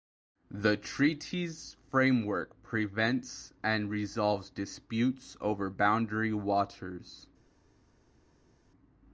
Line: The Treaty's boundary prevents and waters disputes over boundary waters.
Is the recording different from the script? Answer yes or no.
yes